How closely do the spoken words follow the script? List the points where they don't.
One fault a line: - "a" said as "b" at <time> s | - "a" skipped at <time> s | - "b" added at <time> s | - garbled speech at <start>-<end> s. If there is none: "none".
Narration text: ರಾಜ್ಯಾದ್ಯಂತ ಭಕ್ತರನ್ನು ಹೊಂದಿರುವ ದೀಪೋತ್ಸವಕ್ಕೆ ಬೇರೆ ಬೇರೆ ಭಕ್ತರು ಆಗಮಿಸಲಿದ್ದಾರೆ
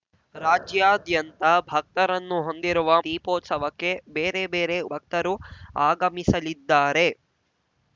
none